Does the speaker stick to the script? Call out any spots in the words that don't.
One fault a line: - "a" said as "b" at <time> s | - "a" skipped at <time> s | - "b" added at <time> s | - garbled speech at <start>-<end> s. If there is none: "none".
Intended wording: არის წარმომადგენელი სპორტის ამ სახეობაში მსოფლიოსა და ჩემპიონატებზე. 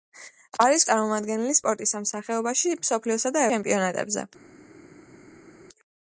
none